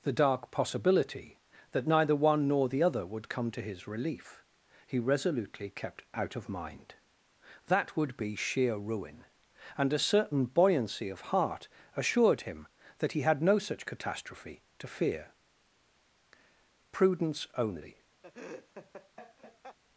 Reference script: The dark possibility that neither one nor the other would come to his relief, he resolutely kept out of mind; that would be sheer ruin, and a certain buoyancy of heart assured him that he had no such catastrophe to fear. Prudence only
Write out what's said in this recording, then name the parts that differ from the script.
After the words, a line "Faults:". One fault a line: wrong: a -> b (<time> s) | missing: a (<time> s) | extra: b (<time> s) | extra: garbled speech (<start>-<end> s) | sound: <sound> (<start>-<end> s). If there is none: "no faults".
The dark possibility that neither one nor the other would come to his relief, he resolutely kept out of mind; that would be sheer ruin, and a certain buoyancy of heart assured him that he had no such catastrophe to fear. Prudence only
Faults:
sound: laugh (18.2-19.8 s)